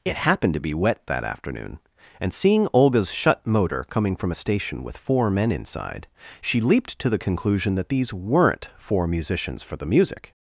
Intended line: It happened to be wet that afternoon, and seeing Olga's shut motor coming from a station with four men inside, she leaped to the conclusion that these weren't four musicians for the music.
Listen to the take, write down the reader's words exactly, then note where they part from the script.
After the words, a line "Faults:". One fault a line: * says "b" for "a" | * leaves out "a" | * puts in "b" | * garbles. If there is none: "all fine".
It happened to be wet that afternoon, and seeing Olga's shut motor coming from a station with four men inside, she leaped to the conclusion that these weren't four musicians for the music.
Faults:
all fine